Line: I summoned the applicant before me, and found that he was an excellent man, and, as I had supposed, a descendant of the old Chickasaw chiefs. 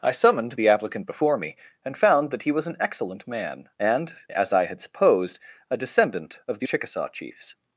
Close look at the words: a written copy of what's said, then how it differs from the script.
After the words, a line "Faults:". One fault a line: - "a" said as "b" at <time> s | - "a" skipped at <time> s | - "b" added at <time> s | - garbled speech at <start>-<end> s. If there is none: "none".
I summoned the applicant before me, and found that he was an excellent man, and, as I had supposed, a descendant of the Chickasaw chiefs.
Faults:
- "old" skipped at 6.7 s